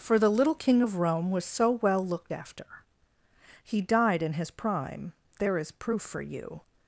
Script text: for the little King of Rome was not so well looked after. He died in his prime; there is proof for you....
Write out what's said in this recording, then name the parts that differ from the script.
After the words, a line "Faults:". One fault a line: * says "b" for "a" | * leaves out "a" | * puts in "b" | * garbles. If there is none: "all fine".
for the little King of Rome was so well looked after. He died in his prime; there is proof for you....
Faults:
* leaves out "not"